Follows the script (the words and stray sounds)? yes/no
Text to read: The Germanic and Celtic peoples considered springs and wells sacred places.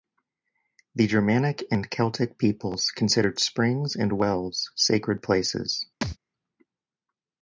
no